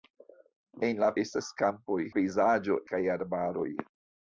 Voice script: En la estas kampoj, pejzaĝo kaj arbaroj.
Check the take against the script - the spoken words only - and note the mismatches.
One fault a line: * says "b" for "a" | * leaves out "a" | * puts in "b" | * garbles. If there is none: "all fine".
all fine